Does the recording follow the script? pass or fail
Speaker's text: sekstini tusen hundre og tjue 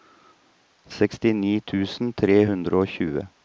fail